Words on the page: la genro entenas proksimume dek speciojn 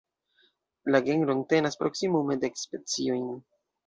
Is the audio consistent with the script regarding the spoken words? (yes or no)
yes